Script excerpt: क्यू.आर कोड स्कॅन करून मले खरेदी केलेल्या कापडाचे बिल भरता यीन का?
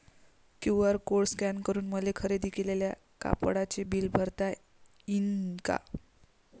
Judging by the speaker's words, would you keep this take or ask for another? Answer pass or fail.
pass